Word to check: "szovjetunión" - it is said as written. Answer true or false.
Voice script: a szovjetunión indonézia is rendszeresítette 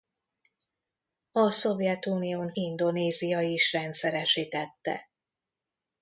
true